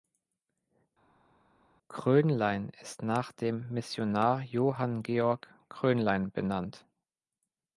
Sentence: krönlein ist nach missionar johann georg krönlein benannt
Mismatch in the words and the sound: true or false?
true